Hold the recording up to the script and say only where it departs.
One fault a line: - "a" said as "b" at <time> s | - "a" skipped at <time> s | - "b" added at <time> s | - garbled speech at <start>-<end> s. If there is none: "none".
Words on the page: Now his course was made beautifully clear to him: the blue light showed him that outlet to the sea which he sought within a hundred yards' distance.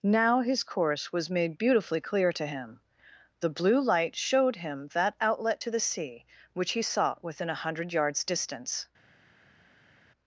none